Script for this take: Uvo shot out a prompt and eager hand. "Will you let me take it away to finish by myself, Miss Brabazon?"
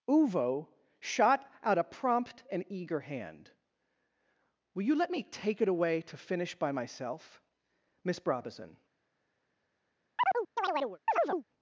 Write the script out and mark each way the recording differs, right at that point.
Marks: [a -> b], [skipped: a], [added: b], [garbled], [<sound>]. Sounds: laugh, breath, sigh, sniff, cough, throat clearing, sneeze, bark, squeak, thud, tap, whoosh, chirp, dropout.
Uvo shot out a prompt and eager hand. "Will you let me take it away to finish by myself, Miss Brabazon?" [chirp]